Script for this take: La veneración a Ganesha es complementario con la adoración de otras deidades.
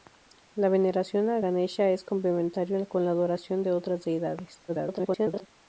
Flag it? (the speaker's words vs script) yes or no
yes